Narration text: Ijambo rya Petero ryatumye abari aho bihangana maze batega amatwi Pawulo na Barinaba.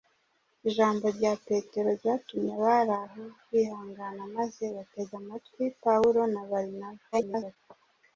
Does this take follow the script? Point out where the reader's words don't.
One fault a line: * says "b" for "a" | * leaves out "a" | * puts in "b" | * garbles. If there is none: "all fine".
* garbles